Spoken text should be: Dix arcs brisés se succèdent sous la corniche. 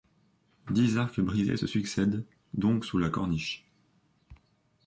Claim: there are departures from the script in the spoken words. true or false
true